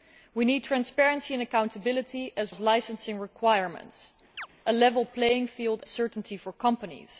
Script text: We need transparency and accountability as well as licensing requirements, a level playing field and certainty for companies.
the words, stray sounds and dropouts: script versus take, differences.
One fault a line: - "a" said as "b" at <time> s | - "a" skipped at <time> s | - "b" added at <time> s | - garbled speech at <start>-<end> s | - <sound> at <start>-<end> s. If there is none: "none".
- "well" skipped at 2.5 s
- chirp at 4.4-4.5 s
- "and" skipped at 5.8 s